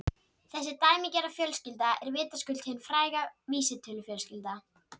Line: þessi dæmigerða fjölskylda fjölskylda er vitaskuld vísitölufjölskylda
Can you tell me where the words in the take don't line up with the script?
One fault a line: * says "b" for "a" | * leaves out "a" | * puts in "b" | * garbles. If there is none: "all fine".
* leaves out "fjölskylda"
* puts in "hin fræga"